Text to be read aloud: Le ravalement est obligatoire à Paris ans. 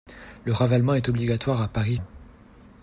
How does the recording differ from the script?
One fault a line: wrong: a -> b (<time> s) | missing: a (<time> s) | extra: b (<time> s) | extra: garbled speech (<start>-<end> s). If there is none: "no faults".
no faults